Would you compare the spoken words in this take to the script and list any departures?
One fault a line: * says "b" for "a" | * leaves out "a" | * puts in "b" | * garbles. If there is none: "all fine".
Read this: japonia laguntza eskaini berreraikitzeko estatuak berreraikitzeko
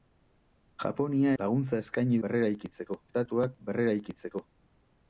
all fine